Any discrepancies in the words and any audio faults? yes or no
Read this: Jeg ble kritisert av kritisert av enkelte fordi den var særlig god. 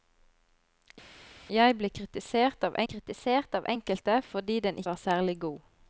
no